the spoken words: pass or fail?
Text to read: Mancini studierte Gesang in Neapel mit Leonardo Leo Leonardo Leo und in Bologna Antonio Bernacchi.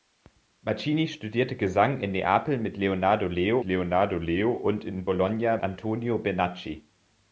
pass